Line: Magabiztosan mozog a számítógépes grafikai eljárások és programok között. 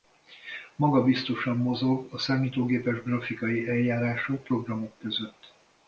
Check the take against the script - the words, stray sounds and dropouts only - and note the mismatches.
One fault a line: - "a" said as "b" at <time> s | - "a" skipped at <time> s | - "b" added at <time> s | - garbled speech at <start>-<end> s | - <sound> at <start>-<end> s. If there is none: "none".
- "és" skipped at 4.5 s